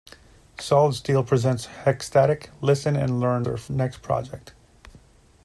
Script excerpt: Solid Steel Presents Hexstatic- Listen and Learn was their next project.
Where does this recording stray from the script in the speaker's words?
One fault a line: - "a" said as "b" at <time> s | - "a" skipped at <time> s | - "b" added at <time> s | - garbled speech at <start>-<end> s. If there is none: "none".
- "was" skipped at 3.5 s